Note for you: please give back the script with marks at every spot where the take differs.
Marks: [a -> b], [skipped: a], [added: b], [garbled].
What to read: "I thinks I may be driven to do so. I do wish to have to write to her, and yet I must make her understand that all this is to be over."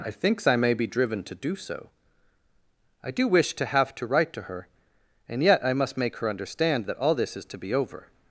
"I thinks I may be driven to do so. I do wish to have to write to her, and yet I must make her understand that all this is to be over."